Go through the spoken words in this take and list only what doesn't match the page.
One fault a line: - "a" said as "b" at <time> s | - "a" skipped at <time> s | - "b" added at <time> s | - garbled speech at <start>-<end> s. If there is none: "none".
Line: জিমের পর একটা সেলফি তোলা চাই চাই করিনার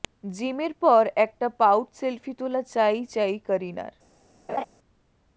- "পাউট" added at 1.6 s